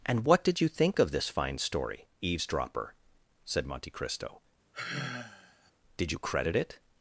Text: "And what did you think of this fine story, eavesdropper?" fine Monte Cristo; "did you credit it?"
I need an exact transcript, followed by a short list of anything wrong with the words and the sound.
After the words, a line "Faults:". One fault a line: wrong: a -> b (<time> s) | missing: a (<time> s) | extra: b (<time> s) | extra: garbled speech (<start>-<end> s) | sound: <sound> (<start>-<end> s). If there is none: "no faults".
"And what did you think of this fine story, eavesdropper?" said Monte Cristo; "did you credit it?"
Faults:
wrong: fine -> said (3.5 s)
sound: sigh (4.7-5.7 s)